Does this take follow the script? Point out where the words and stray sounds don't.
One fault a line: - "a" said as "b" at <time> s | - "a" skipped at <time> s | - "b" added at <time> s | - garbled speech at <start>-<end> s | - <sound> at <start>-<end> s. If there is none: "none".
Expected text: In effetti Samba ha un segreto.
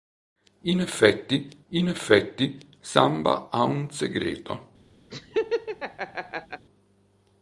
- "in effetti" added at 1.7 s
- laugh at 5.1-6.7 s